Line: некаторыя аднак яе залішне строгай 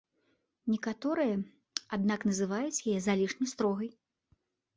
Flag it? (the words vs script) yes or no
yes